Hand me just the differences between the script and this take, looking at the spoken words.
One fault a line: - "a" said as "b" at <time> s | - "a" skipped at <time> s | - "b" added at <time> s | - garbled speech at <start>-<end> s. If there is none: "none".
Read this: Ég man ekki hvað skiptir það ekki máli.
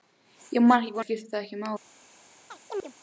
none